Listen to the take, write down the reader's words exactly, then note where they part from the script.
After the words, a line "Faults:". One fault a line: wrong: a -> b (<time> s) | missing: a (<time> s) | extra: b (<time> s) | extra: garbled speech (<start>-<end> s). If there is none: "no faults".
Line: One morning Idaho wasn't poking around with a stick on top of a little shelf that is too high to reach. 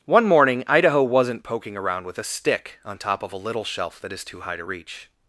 One morning Idaho wasn't poking around with a stick on top of a little shelf that is too high to reach.
Faults:
no faults